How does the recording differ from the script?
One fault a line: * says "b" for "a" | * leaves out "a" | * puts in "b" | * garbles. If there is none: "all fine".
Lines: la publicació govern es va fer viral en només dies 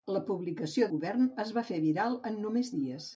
all fine